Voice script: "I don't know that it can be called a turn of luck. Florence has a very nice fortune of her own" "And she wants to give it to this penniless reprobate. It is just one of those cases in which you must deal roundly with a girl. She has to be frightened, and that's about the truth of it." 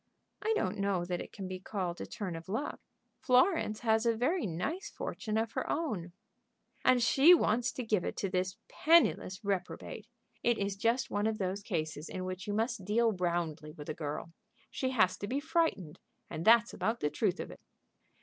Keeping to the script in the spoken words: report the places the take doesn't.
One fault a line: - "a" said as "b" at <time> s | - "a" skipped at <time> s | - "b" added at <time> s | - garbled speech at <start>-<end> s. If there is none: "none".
none